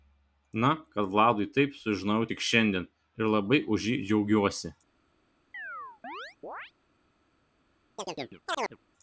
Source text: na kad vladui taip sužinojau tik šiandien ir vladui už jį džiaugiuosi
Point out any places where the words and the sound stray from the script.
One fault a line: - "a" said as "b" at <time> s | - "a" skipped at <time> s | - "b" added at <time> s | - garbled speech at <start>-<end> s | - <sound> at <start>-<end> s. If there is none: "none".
- "vladui" said as "labai" at 3.4 s
- chirp at 5.5-6.7 s
- chirp at 8.0-8.8 s